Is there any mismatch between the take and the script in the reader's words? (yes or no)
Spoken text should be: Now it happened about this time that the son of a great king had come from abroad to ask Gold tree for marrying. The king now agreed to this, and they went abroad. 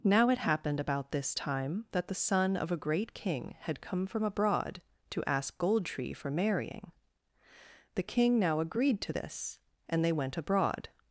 no